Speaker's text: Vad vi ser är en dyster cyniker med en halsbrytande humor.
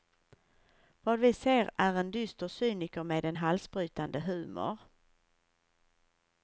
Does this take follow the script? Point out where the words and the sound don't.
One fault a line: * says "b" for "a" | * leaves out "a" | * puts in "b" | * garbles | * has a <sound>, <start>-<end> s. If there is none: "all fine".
all fine